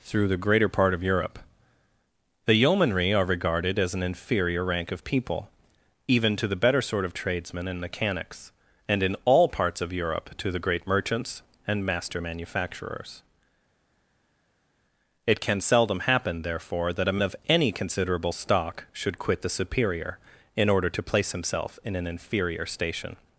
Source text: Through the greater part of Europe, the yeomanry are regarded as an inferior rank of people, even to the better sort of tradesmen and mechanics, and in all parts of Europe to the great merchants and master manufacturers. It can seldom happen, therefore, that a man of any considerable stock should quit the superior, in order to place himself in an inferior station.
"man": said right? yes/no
no